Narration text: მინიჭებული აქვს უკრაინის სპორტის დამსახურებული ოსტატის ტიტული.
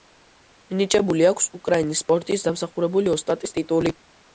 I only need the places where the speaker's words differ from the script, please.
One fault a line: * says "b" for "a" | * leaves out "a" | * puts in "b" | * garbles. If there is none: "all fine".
all fine